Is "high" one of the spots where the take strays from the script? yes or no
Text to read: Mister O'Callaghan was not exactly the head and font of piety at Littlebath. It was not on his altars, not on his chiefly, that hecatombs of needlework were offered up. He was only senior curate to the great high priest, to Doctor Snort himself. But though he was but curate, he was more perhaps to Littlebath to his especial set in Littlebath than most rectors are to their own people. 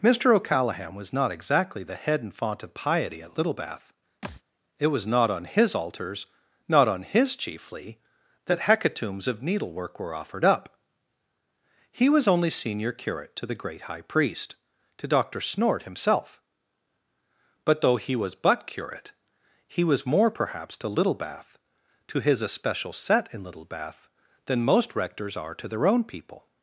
no